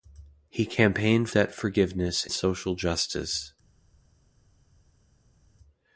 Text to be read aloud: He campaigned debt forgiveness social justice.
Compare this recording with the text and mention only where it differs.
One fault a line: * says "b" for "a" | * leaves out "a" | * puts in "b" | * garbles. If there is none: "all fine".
all fine